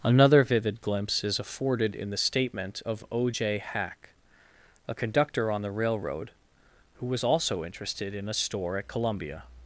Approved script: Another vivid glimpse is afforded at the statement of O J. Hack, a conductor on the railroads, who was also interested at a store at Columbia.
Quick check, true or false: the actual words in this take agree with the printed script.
false